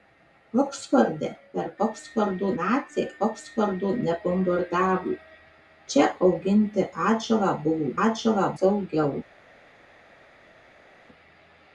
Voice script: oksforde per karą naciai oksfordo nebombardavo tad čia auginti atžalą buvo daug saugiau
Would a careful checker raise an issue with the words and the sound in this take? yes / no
yes